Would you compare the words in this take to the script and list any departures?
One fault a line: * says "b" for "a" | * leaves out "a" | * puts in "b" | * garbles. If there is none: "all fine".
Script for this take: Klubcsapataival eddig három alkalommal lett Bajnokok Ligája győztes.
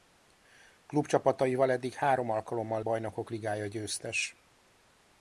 * leaves out "lett"